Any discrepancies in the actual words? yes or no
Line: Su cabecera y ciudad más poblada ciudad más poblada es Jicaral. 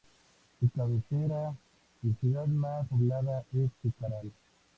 yes